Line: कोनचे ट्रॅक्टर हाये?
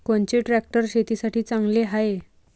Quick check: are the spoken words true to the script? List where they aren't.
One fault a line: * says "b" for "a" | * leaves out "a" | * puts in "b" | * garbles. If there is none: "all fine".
* puts in "शेतीसाठी चांगले"